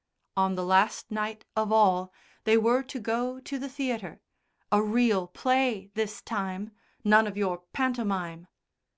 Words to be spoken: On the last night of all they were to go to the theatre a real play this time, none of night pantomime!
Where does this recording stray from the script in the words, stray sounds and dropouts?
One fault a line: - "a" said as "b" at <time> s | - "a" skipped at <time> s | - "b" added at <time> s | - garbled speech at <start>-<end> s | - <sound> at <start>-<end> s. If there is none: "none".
- "night" said as "your" at 7.4 s